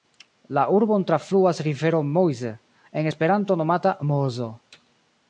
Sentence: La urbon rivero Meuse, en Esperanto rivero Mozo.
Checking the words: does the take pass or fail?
fail